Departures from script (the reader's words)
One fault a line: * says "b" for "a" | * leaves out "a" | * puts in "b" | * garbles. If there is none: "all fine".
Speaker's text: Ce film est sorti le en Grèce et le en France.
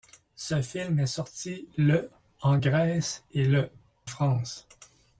* leaves out "en"